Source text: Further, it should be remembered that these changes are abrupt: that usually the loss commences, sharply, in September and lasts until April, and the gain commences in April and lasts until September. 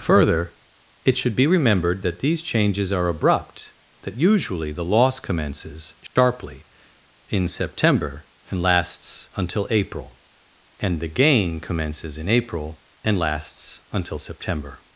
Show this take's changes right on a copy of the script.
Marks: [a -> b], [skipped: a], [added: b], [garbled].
Further, it should be remembered that these changes are abrupt: that usually the loss commences, sharply, in September and lasts until April, and the gain commences in April and lasts until September.